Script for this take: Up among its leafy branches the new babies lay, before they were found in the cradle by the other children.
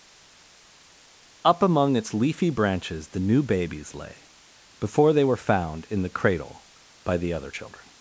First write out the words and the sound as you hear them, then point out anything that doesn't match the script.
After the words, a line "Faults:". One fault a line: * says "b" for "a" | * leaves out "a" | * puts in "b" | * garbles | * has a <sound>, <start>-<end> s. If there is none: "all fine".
Up among its leafy branches the new babies lay, before they were found in the cradle by the other children.
Faults:
all fine